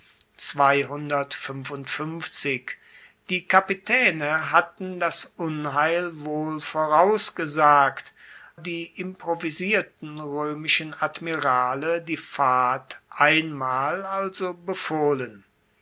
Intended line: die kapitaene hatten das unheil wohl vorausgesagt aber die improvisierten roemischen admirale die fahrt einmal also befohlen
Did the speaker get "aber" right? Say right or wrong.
wrong